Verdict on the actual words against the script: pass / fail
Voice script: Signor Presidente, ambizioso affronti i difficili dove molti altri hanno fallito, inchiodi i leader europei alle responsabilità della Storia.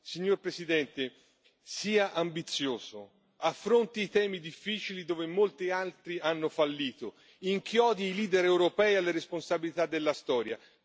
fail